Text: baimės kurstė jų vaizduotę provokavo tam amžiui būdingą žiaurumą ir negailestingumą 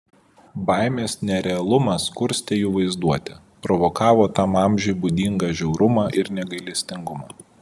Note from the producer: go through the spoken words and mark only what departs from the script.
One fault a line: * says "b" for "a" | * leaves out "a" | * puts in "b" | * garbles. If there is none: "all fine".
* puts in "nerealumas"